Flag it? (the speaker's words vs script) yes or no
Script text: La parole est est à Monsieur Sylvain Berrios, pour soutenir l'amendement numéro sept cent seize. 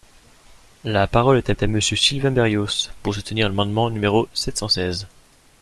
no